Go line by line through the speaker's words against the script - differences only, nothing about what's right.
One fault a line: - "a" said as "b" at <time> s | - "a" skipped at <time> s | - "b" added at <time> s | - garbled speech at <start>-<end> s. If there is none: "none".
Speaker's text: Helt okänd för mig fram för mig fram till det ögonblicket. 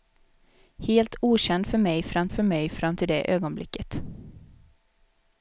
none